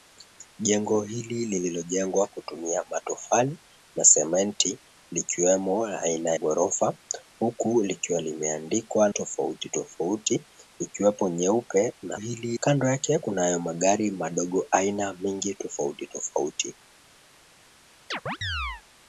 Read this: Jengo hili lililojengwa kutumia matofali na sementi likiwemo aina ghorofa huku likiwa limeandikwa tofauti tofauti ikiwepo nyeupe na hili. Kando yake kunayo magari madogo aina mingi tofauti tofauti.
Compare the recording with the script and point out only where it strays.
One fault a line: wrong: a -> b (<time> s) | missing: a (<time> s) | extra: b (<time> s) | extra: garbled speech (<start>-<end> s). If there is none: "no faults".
no faults